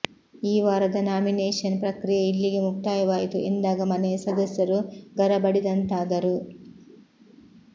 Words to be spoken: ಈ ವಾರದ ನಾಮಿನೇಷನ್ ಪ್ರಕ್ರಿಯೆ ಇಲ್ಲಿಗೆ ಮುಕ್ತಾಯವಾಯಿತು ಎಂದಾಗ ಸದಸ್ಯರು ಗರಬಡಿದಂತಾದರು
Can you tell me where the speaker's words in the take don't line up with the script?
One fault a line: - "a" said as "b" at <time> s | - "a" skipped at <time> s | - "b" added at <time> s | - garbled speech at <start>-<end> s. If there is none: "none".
- "ಮನೆಯ" added at 3.9 s